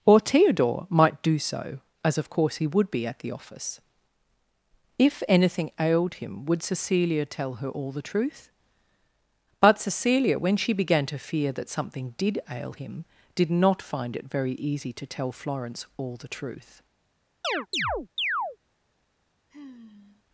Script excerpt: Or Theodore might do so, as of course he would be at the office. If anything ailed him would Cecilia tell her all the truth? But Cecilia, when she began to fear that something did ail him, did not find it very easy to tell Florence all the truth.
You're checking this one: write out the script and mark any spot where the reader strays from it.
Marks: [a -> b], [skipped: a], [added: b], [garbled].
Or Theodore might do so, as of course he would be at the office. If anything ailed him would Cecilia tell her all the truth? But Cecilia, when she began to fear that something did ail him, did not find it very easy to tell Florence all the truth.